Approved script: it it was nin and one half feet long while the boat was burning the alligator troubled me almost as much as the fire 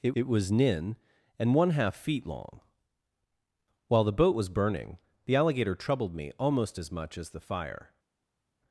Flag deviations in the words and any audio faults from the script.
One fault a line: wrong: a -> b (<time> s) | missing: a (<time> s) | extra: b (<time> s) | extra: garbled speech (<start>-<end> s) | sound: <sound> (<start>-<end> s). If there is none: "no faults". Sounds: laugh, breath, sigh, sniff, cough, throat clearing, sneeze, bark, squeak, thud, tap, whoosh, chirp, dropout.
no faults